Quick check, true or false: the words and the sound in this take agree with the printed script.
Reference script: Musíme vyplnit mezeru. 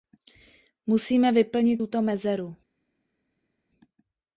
false